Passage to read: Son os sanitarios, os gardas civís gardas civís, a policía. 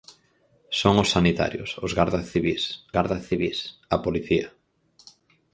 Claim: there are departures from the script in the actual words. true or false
false